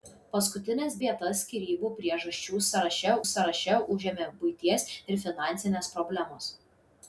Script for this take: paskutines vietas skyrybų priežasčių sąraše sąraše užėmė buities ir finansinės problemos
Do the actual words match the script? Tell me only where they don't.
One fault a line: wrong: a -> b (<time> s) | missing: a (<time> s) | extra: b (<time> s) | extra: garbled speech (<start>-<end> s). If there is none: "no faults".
no faults